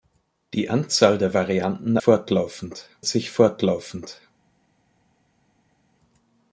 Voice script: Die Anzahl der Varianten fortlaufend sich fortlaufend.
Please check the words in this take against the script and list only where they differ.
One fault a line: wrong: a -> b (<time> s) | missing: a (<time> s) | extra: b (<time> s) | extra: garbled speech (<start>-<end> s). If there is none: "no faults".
no faults